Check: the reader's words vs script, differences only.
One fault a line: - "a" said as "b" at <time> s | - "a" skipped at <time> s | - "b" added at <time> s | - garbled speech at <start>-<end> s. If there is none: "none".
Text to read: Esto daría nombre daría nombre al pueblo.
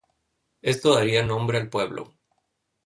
- "daría nombre" skipped at 1.6 s